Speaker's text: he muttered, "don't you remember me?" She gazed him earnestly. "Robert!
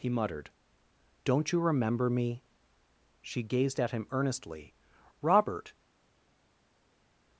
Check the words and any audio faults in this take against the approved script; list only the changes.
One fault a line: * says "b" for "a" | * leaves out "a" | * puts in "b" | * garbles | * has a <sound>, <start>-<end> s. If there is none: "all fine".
* puts in "at"